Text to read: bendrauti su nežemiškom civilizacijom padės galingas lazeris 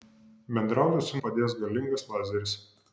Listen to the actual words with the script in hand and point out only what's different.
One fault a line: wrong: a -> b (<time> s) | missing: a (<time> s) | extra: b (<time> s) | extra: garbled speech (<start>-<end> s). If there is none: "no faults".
missing: nežemiškom civilizacijom (1.2 s)